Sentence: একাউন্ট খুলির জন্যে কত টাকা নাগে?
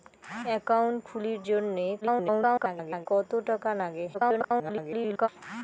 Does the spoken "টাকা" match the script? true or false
true